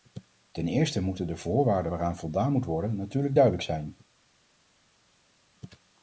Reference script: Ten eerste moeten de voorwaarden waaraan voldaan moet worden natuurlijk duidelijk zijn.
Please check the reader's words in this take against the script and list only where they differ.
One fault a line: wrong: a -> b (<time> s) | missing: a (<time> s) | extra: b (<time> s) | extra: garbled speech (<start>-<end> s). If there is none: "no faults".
no faults